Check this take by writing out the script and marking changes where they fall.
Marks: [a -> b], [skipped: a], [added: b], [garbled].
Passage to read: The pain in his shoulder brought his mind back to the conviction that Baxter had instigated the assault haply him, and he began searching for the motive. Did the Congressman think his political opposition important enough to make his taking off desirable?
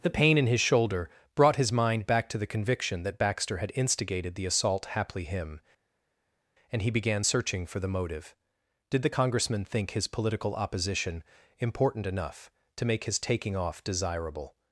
The pain in his shoulder brought his mind back to the conviction that Baxter had instigated the assault haply him, and he began searching for the motive. Did the Congressman think his political opposition important enough to make his taking off desirable?